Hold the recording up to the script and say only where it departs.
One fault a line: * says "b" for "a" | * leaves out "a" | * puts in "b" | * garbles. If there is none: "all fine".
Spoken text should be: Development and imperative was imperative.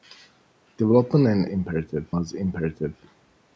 all fine